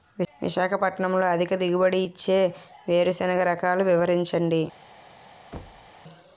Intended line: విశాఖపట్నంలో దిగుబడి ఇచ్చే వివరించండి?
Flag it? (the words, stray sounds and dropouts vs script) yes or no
yes